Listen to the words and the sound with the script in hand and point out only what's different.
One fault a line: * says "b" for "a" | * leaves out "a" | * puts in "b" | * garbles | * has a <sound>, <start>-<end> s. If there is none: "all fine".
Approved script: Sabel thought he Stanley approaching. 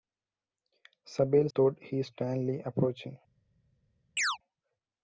* has a chirp, 4.2-4.4 s